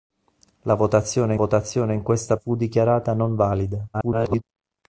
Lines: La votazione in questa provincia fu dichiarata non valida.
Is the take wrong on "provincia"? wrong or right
wrong